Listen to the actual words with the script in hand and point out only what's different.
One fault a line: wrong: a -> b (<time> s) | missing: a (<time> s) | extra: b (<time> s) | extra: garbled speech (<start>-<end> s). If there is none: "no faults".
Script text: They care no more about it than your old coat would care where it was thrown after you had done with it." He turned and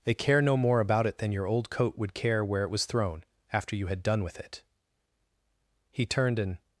no faults